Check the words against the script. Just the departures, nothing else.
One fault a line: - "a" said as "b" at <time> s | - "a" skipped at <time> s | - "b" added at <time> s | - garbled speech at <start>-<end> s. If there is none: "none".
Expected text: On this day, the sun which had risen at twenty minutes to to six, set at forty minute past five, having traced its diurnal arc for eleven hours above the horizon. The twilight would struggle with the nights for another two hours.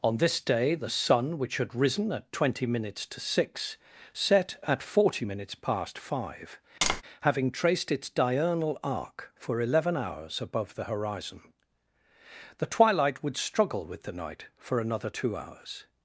- "to" skipped at 3.2 s
- "minute" said as "minutes" at 5.2 s
- "nights" said as "night" at 14.1 s